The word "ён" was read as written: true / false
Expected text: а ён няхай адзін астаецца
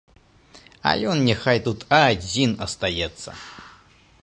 true